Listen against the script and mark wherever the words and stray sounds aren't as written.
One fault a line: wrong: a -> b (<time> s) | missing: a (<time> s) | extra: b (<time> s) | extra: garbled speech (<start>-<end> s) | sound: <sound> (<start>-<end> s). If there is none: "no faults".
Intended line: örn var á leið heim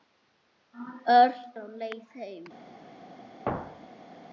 missing: var (1.4 s)
sound: thud (3.5-4.1 s)